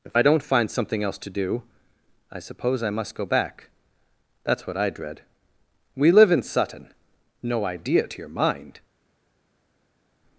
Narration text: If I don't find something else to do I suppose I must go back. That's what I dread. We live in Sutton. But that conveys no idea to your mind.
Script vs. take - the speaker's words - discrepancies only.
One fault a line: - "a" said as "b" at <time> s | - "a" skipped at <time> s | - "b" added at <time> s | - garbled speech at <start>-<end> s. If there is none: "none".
- "But that conveys" skipped at 6.9 s